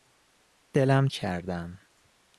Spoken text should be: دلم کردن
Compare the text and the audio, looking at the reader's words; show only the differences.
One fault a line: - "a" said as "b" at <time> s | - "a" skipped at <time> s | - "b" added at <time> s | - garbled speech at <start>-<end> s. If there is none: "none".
none